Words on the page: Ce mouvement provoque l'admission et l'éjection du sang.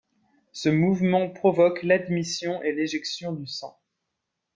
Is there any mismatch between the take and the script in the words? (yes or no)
no